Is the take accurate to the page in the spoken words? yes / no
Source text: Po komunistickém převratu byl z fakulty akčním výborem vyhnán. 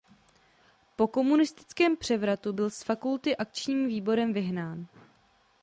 yes